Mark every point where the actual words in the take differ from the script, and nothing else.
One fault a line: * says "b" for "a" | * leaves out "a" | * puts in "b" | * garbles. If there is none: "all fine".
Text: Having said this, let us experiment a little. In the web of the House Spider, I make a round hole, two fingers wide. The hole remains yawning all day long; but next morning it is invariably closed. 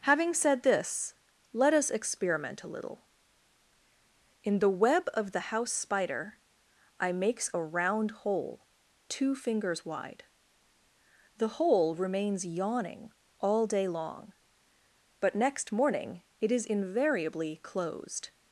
* says "makes" for "make"